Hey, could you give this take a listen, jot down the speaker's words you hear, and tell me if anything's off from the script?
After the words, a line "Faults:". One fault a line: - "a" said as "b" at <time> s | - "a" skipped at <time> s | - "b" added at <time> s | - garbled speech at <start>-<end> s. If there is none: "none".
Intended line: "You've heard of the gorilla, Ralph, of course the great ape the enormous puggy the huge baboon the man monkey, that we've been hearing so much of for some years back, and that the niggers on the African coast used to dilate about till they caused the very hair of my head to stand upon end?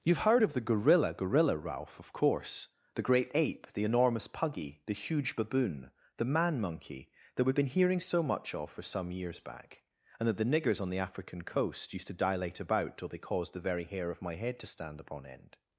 "You've heard of the gorilla gorilla, Ralph, of course the great ape the enormous puggy the huge baboon the man monkey, that we've been hearing so much of for some years back, and that the niggers on the African coast used to dilate about till they caused the very hair of my head to stand upon end?
Faults:
- "gorilla" added at 1.1 s